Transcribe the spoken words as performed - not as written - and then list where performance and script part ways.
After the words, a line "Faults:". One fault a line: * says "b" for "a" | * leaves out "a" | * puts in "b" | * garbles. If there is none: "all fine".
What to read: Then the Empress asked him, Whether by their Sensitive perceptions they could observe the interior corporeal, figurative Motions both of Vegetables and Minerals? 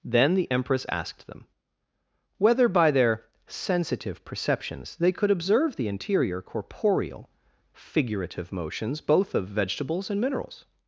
Then the Empress asked them, Whether by their Sensitive perceptions they could observe the interior corporeal, figurative Motions both of Vegetables and Minerals?
Faults:
* says "them" for "him"